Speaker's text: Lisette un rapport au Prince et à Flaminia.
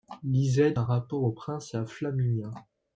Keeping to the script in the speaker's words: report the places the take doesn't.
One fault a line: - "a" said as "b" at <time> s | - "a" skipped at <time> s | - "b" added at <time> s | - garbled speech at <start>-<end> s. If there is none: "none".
none